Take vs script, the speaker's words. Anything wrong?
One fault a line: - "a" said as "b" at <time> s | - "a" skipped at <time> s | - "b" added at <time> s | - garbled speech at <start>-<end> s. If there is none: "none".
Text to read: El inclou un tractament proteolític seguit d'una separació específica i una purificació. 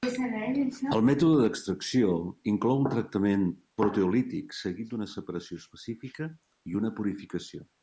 - "mètode d'extracció" added at 1.1 s